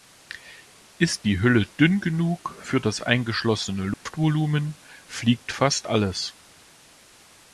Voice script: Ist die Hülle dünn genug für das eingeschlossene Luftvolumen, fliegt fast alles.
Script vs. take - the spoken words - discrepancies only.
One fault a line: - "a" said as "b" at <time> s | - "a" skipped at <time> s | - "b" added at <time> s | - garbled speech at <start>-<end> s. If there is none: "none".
none